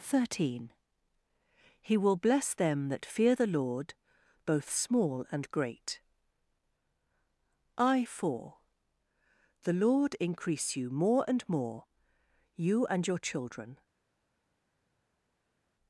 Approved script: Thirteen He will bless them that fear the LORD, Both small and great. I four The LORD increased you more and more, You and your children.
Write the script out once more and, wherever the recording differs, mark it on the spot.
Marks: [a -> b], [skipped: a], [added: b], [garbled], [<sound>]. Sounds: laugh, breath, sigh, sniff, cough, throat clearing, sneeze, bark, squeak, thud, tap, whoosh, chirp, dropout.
Thirteen He will bless them that fear the LORD, Both small and great. I four The LORD [increased -> increase] you more and more, You and your children.